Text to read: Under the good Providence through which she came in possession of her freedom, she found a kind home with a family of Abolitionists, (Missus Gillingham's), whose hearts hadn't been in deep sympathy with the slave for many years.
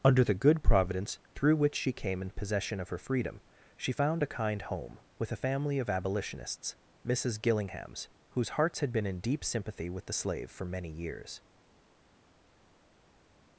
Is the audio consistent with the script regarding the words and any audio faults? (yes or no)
no